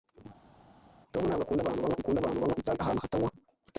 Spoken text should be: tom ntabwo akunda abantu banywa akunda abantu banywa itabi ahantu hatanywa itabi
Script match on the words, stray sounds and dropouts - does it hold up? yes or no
yes